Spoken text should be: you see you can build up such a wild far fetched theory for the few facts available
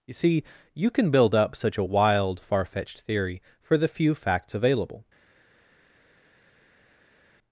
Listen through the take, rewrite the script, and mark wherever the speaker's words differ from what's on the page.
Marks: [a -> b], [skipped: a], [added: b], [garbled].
you see you can build up such a wild far fetched theory for the few facts available